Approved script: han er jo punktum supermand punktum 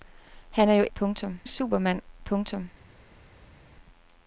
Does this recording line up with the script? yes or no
yes